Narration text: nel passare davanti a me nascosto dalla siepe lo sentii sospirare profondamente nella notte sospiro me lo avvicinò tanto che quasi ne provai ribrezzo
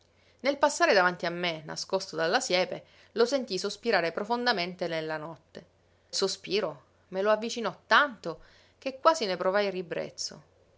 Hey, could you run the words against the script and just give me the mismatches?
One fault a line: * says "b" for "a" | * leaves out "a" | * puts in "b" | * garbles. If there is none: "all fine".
all fine